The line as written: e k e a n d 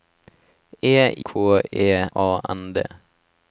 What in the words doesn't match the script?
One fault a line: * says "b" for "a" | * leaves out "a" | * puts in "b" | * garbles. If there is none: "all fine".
all fine